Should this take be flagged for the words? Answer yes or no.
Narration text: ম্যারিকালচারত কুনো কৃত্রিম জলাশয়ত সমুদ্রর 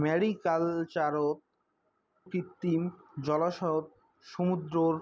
yes